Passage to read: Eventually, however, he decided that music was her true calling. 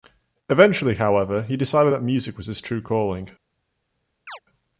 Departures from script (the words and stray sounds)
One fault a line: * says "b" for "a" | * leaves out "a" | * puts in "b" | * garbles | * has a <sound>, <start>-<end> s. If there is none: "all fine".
* says "his" for "her"
* has a chirp, 4.3-4.4 s